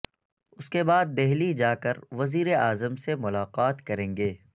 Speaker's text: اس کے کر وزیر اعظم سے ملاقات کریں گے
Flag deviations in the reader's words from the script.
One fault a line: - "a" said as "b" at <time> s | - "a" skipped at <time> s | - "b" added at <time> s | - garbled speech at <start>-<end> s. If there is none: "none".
- "بعد دہلی جا" added at 0.8 s